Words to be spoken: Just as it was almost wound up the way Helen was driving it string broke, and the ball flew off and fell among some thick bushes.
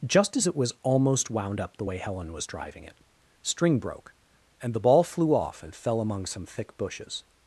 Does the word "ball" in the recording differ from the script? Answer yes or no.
no